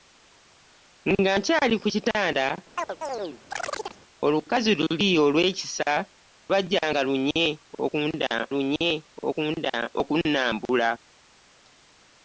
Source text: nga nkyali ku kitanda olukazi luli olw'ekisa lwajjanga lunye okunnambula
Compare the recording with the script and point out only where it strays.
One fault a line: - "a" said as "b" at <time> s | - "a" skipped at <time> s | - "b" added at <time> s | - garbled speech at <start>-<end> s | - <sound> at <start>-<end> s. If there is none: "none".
- chirp at 2.8-4.0 s
- "lunye" added at 8.5 s